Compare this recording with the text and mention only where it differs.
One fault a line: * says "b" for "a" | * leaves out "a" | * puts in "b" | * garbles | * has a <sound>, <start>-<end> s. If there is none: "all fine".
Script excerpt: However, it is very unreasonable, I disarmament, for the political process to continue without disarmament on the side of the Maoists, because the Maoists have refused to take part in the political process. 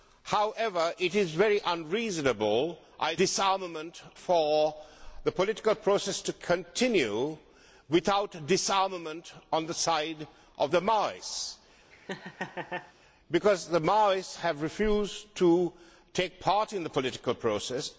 * has a laugh, 11.9-12.9 s